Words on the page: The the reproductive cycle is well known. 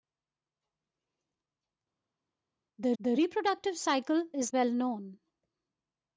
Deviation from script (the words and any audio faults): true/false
false